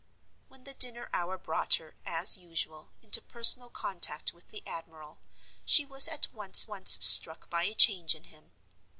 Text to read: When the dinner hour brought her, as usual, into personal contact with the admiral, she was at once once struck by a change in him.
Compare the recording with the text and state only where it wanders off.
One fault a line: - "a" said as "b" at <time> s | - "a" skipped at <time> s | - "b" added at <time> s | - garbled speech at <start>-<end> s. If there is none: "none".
none